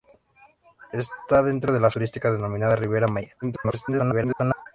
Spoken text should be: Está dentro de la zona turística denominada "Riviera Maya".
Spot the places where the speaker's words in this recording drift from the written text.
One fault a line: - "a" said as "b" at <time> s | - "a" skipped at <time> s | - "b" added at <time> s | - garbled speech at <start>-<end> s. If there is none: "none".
- "zona" skipped at 1.9 s
- garbled speech at 3.4-4.7 s